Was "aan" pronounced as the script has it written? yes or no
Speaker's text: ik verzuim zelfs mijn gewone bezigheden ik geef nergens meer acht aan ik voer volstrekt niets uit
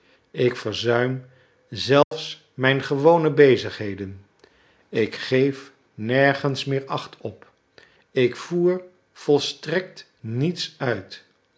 no